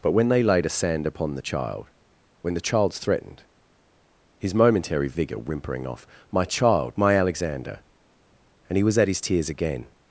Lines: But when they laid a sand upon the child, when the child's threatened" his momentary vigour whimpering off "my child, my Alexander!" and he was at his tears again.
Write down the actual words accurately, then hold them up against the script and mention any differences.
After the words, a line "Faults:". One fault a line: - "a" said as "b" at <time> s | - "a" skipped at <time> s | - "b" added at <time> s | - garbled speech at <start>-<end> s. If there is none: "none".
But when they laid a sand upon the child, when the child's threatened" his momentary vigour whimpering off "my child, my Alexander!" and he was at his tears again.
Faults:
none